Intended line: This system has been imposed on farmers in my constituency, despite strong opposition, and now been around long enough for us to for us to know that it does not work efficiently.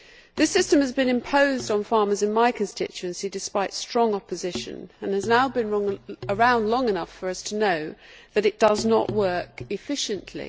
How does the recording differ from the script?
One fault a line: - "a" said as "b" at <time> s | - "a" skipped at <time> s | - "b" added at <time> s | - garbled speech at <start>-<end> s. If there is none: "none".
- "has" added at 5.1 s
- "for us to" skipped at 7.5 s